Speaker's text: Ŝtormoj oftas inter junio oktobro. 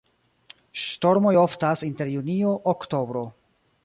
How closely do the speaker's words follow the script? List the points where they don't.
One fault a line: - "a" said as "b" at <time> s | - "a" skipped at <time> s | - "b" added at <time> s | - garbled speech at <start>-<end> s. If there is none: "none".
none